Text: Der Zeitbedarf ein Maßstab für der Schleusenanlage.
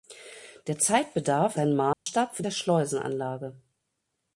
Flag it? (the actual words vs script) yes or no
no